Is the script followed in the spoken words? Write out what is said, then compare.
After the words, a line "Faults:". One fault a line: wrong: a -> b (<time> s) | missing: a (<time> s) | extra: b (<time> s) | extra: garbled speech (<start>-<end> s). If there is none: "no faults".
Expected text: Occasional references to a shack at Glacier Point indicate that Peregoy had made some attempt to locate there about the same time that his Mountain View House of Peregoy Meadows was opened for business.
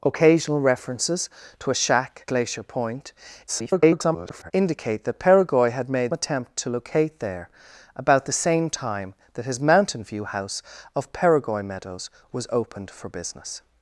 Occasional references to a shack Glacier Point [garbled] indicate that Peregoy had made attempt to locate there about the same time that his Mountain View House of Peregoy Meadows was opened for business.
Faults:
missing: at (2.2 s)
extra: garbled speech (3.5-4.5 s)
missing: some (6.1 s)